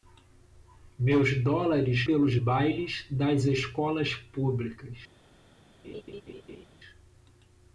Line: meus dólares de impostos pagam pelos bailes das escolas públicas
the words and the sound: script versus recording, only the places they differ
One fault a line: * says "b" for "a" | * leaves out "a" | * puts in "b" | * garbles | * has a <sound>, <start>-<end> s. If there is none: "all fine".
* leaves out "de impostos pagam"
* has a laugh, 5.8-6.7 s